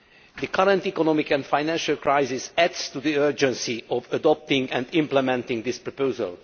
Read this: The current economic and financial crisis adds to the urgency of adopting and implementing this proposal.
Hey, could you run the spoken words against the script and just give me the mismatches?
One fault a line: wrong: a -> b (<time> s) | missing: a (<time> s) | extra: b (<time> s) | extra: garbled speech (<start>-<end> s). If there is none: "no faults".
no faults